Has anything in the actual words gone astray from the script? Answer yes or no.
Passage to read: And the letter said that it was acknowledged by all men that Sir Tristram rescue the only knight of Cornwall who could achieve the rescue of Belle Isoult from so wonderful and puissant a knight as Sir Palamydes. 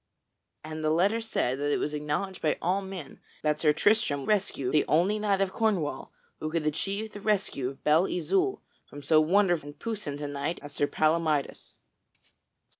no